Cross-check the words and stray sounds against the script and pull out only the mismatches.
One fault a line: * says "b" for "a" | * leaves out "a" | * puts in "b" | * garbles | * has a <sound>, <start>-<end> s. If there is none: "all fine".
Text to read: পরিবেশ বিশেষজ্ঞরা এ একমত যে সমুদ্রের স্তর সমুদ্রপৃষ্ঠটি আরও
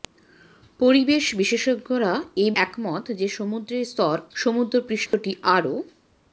* has a dropout, 5.1-5.1 s